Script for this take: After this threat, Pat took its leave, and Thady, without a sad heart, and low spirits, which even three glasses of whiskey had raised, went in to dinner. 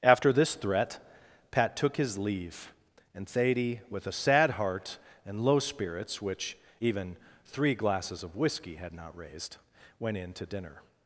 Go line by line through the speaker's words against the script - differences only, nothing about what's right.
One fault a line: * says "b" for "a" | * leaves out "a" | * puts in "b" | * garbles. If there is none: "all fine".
* says "his" for "its"
* says "with" for "without"
* puts in "not"